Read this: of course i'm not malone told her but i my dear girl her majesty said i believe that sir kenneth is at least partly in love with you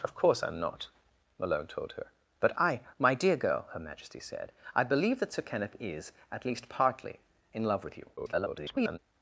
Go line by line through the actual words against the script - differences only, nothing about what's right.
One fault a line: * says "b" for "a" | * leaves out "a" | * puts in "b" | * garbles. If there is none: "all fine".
* garbles